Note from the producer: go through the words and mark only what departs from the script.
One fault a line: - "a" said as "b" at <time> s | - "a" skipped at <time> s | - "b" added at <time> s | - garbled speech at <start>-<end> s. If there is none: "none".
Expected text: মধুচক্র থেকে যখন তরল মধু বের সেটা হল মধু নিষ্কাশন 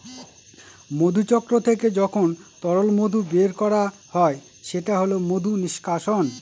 - "করা হয়" added at 3.5 s